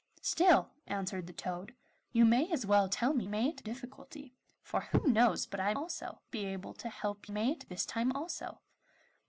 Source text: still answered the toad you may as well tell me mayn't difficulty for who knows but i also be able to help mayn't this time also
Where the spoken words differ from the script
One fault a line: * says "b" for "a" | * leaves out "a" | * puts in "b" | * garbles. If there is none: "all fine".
all fine